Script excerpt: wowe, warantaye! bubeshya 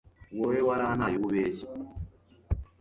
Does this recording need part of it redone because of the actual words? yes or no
no